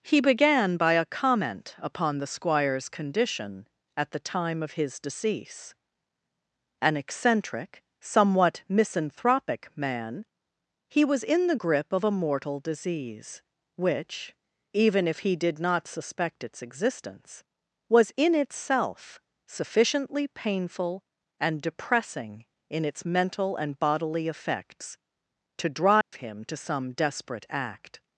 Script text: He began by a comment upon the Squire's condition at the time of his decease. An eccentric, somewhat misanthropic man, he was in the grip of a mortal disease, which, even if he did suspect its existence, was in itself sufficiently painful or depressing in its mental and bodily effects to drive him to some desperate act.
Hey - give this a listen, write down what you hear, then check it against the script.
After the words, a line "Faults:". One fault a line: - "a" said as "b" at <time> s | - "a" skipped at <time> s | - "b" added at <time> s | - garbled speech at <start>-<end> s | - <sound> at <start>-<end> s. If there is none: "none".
He began by a comment upon the Squire's condition at the time of his decease. An eccentric, somewhat misanthropic man, he was in the grip of a mortal disease, which, even if he did not suspect its existence, was in itself sufficiently painful and depressing in its mental and bodily effects to drive him to some desperate act.
Faults:
- "not" added at 15.6 s
- "or" said as "and" at 21.4 s
- dropout at 26.0-26.1 s